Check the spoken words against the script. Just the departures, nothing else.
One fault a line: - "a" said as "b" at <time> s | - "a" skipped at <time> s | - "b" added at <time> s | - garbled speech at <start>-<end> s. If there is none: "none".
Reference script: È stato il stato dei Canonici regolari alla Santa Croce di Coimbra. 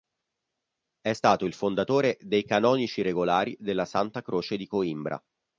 - "stato" said as "fondatore" at 1.5 s
- "alla" said as "della" at 3.6 s